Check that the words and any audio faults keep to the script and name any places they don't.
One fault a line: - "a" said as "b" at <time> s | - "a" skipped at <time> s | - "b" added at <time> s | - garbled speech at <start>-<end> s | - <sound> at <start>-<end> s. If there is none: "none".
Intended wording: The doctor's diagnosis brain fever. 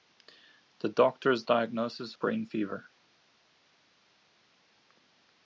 none